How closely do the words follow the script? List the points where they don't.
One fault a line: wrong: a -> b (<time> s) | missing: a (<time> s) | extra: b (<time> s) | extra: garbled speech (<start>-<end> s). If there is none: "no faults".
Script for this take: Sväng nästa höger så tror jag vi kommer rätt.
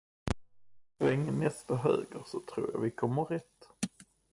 no faults